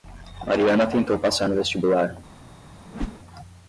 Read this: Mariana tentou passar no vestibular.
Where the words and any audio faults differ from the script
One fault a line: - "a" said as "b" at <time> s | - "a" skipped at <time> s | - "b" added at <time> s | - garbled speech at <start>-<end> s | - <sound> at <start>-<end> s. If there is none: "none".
- whoosh at 2.8-3.2 s